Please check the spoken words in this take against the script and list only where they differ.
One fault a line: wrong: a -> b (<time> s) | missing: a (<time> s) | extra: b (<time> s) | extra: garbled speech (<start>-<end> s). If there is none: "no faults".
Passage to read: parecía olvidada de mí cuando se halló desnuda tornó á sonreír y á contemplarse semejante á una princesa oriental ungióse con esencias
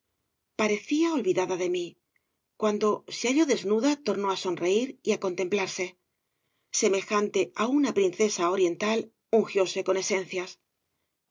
no faults